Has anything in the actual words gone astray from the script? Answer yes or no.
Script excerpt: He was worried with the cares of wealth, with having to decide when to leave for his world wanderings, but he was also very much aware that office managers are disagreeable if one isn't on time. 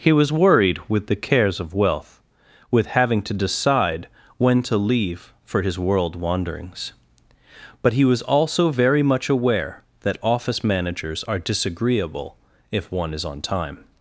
yes